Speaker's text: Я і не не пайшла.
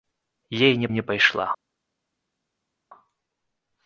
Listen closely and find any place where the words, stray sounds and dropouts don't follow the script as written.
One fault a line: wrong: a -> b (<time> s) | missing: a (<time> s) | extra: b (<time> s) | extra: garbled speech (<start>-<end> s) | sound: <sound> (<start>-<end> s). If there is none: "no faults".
no faults